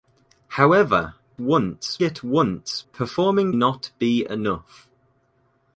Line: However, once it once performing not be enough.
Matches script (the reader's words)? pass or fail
pass